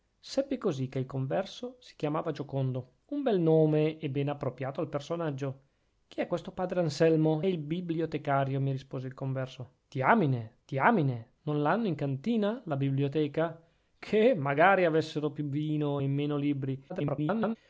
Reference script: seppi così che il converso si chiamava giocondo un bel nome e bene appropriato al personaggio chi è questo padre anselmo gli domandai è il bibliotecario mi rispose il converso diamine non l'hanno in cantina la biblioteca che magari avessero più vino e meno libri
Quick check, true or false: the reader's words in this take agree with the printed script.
false